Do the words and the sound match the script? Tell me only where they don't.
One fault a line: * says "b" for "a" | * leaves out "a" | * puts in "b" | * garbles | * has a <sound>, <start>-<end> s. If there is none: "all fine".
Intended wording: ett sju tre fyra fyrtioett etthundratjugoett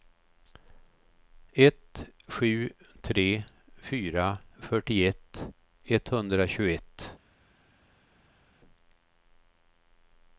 all fine